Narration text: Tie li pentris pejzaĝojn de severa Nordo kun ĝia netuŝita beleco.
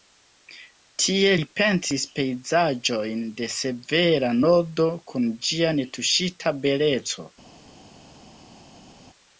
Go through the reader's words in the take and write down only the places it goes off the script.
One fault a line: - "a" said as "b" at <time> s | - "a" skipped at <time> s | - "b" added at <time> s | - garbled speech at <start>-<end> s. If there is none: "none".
none